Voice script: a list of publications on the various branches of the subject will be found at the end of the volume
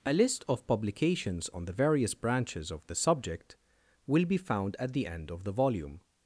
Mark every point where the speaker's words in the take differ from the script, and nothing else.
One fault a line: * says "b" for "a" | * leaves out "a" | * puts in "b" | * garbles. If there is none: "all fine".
all fine